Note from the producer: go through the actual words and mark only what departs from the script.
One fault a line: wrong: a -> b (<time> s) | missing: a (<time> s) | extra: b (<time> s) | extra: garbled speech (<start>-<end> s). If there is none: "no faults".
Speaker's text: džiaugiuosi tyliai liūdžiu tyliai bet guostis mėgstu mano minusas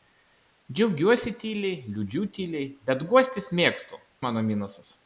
no faults